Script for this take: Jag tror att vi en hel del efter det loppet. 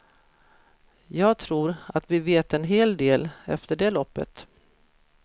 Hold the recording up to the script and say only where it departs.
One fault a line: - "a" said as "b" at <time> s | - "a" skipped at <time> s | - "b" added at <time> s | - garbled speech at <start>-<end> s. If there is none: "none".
- "vet" added at 2.2 s